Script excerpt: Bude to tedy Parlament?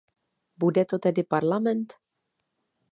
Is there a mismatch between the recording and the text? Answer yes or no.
no